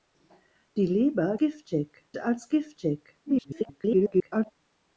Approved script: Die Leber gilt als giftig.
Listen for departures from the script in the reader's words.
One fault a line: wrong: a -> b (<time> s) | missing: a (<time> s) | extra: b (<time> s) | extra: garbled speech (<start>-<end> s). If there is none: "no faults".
wrong: gilt -> giftig (1.4 s)
extra: garbled speech (3.3-4.5 s)